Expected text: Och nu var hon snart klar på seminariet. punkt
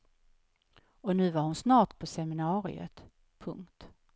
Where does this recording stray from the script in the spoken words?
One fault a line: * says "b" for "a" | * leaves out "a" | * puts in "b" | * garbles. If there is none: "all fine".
* leaves out "klar"